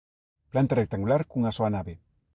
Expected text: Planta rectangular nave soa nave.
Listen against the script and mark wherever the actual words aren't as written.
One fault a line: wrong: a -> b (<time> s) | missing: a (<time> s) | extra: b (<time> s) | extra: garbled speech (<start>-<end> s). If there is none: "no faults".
wrong: nave -> cunha (1.2 s)